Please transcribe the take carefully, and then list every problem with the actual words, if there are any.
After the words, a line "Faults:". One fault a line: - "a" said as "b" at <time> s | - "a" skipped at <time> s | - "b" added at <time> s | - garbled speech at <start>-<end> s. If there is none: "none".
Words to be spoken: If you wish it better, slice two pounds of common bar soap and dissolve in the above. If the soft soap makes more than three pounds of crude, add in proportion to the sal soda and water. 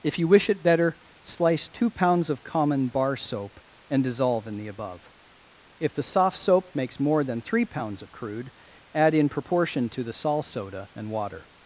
If you wish it better, slice two pounds of common bar soap and dissolve in the above. If the soft soap makes more than three pounds of crude, add in proportion to the sal soda and water.
Faults:
none